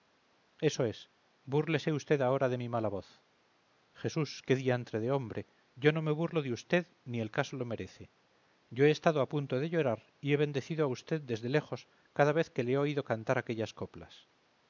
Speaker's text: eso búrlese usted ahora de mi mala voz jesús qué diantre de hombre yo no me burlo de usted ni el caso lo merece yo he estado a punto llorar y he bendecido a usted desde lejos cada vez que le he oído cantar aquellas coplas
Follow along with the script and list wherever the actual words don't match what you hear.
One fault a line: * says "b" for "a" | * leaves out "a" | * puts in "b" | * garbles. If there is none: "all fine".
* puts in "es"
* puts in "de"